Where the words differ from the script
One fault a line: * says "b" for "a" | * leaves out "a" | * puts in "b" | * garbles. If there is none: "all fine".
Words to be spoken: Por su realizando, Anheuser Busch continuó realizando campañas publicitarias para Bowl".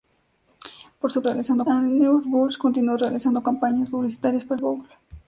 all fine